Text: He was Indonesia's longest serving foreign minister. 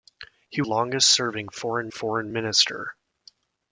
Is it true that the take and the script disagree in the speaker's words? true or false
true